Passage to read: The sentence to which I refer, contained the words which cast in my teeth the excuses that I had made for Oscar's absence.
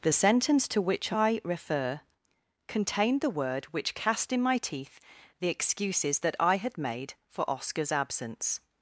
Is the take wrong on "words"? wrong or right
wrong